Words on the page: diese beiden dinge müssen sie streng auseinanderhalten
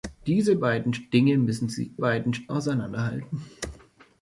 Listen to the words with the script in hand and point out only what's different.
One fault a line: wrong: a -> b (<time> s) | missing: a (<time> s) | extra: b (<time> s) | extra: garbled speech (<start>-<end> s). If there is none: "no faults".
wrong: streng -> beiden (2.0 s)